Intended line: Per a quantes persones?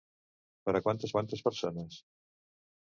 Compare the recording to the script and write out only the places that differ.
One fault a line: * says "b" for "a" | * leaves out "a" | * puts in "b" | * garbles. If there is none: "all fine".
* puts in "quantes"